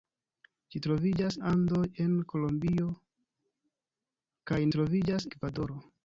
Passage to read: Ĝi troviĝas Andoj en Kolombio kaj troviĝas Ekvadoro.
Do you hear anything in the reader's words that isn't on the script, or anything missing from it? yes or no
no